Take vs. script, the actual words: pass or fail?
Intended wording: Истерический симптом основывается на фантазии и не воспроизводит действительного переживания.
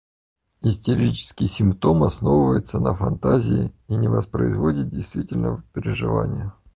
pass